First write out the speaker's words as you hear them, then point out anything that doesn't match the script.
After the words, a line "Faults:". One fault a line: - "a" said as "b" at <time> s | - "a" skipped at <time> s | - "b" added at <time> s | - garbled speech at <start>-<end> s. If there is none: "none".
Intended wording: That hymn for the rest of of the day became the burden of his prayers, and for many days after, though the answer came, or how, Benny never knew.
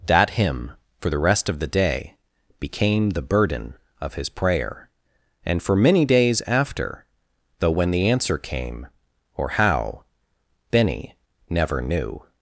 That hymn for the rest of the day became the burden of his prayer, and for many days after, though when the answer came, or how, Benny never knew.
Faults:
- "of" skipped at 1.6 s
- "prayers" said as "prayer" at 4.3 s
- "when" added at 7.7 s